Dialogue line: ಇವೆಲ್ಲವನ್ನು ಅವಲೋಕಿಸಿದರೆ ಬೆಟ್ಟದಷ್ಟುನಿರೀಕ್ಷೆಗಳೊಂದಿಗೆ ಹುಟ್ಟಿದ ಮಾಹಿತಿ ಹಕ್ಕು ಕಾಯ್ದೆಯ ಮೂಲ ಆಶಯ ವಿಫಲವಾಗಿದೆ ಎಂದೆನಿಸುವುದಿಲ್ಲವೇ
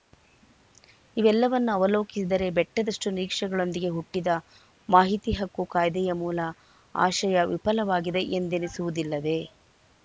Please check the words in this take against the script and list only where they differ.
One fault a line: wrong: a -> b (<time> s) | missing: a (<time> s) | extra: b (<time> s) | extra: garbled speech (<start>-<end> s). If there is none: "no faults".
no faults